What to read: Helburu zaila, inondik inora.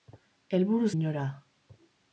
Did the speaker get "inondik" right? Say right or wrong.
wrong